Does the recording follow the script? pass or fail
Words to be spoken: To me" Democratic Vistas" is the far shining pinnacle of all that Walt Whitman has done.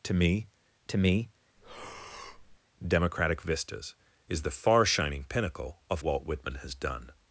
fail